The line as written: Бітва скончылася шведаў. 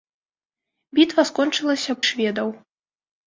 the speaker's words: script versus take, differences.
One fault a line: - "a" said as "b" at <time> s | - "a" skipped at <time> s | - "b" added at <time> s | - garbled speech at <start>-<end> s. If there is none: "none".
none